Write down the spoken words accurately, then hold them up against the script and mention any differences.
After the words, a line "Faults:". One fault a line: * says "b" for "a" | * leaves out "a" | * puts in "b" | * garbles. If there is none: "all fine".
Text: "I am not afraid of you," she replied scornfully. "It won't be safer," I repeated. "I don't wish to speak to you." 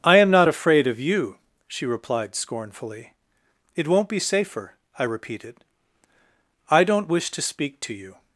"I am not afraid of you," she replied scornfully. "It won't be safer," I repeated. "I don't wish to speak to you."
Faults:
all fine